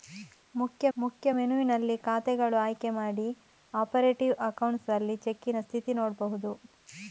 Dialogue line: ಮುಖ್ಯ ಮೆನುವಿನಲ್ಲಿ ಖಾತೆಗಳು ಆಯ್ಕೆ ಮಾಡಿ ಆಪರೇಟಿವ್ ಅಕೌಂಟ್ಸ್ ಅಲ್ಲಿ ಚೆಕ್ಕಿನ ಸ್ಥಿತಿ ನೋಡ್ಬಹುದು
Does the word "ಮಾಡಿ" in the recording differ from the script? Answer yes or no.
no